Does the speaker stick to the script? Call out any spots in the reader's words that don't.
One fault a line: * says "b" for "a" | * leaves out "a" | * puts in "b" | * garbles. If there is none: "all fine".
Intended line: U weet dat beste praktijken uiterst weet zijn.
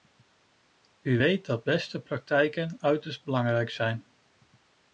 * says "belangrijk" for "weet"